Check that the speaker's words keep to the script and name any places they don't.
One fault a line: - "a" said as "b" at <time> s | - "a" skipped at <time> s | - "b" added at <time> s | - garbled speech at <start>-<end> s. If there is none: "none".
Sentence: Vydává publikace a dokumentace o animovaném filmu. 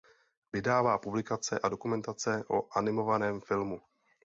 none